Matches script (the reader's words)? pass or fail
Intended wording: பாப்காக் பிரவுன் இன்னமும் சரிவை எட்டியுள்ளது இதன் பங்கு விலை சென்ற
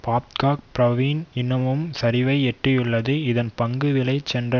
pass